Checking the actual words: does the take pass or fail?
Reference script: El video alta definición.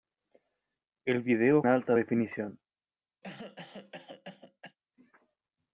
pass